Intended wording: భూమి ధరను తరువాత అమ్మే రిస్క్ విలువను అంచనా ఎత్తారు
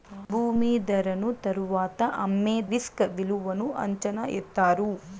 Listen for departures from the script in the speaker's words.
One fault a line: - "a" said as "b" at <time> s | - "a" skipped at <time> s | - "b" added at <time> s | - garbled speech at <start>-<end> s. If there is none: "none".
none